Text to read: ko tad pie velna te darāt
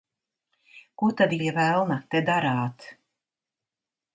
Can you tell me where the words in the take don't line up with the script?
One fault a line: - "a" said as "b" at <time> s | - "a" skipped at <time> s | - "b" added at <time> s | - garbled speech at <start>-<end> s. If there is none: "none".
none